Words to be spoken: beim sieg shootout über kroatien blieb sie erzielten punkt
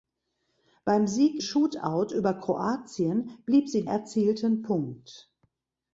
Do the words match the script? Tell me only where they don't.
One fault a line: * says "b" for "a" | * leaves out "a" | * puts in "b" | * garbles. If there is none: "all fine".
all fine